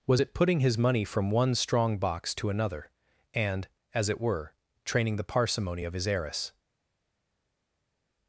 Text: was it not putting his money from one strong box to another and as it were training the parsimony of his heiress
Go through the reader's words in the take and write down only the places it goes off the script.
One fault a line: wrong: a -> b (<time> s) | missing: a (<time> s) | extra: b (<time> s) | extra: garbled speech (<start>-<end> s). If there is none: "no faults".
missing: not (0.3 s)